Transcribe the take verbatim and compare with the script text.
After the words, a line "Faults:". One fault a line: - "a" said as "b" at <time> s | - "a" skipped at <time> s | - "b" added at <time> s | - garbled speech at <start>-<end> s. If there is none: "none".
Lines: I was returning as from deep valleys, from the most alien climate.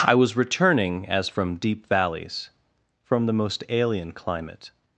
I was returning as from deep valleys, from the most alien climate.
Faults:
none